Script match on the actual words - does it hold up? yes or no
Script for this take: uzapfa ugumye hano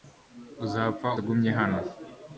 yes